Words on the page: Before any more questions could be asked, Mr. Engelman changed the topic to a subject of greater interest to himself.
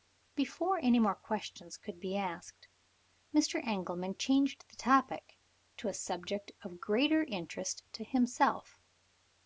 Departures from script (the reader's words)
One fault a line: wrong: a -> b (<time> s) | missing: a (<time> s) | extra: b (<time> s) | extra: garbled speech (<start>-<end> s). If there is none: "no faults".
no faults